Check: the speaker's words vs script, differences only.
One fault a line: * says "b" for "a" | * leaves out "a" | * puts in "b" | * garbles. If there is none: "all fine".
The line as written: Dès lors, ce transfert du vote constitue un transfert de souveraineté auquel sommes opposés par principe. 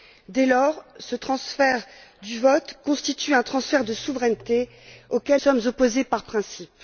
all fine